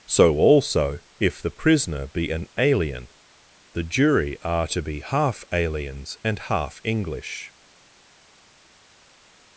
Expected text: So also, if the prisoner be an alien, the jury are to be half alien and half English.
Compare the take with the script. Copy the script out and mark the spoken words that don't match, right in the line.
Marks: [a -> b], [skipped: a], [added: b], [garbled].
So also, if the prisoner be an alien, the jury are to be half [alien -> aliens] and half English.